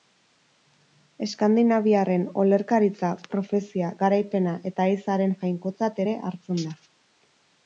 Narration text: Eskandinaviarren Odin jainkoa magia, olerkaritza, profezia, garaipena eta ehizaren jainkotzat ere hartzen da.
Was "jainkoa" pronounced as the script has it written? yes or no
no